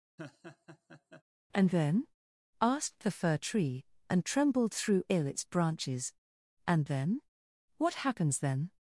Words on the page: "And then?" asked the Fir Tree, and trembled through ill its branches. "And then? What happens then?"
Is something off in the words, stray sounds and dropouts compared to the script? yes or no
yes